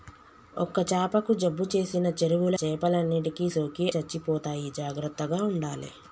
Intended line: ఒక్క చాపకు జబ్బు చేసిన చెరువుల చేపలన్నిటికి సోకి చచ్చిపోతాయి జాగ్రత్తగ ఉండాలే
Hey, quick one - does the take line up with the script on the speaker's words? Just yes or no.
yes